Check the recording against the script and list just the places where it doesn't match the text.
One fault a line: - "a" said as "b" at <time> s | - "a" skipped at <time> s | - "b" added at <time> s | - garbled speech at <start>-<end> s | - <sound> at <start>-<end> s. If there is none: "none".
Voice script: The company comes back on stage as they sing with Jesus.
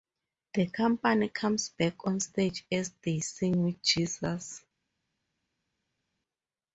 none